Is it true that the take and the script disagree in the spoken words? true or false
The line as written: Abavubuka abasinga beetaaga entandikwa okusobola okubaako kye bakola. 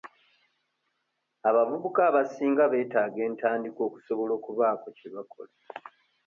false